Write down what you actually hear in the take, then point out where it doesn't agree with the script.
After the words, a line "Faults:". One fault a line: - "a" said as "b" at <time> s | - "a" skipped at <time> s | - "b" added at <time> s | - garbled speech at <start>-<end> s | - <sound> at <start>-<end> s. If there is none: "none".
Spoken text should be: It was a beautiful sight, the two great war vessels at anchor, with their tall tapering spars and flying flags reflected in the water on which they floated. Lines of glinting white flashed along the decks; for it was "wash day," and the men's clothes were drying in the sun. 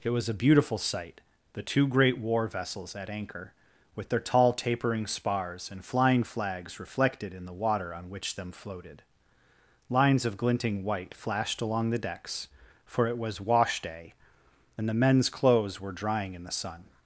It was a beautiful sight, the two great war vessels at anchor, with their tall tapering spars and flying flags reflected in the water on which them floated. Lines of glinting white flashed along the decks; for it was "wash day," and the men's clothes were drying in the sun.
Faults:
- "they" said as "them" at 8.3 s